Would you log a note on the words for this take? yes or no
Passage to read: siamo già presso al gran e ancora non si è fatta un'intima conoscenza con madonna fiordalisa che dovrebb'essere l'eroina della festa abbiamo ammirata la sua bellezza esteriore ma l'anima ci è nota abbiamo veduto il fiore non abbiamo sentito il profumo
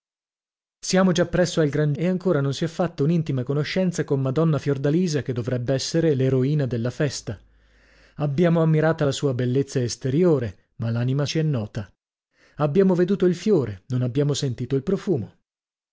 no